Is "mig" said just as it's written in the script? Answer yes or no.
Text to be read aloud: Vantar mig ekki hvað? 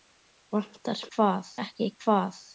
no